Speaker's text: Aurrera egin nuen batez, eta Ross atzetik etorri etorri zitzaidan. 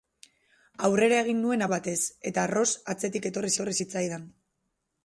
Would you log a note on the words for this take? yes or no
no